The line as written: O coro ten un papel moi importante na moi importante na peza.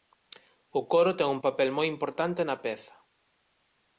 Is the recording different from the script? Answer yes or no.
yes